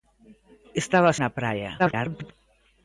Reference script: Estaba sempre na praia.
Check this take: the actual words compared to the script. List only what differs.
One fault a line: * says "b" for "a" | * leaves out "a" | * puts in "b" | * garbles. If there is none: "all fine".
* leaves out "sempre"
* garbles